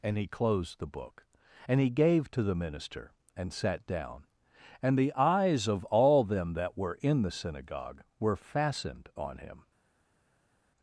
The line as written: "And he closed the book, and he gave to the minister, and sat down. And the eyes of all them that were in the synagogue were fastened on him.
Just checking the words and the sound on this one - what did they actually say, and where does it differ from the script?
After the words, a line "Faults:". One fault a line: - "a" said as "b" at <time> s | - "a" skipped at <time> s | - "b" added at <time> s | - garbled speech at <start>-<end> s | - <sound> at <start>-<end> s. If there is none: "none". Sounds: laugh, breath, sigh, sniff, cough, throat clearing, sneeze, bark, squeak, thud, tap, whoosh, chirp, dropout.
"And he closed the book, and he gave to the minister, and sat down. And the eyes of all them that were in the synagogue were fastened on him.
Faults:
none